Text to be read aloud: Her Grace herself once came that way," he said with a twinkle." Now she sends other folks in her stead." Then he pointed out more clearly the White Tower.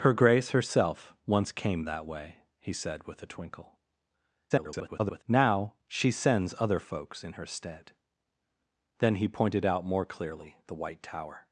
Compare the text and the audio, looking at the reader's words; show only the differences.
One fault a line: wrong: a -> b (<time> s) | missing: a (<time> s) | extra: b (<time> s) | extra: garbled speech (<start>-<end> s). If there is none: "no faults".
extra: garbled speech (4.5-5.2 s)